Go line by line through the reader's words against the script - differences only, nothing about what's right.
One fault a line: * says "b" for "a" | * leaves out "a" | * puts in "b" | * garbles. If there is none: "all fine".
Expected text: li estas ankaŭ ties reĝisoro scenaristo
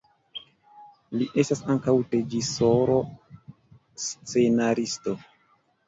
* leaves out "ties"